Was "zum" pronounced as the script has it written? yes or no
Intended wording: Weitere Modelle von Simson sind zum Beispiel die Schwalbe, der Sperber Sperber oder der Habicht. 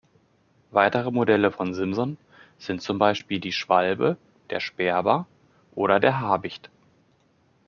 yes